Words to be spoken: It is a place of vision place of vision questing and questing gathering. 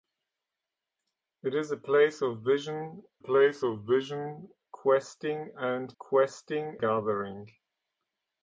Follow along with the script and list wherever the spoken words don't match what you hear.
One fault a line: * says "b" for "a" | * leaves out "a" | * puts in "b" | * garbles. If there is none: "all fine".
all fine